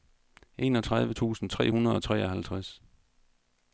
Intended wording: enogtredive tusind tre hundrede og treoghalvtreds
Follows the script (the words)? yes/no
yes